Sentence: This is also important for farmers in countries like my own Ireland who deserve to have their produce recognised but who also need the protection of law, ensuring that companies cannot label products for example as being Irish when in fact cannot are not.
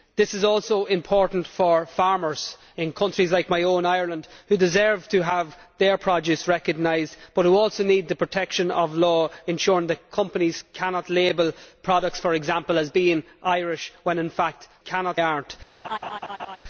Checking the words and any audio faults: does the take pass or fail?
fail